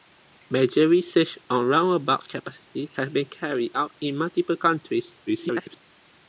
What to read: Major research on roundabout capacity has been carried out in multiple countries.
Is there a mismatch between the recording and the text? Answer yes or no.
yes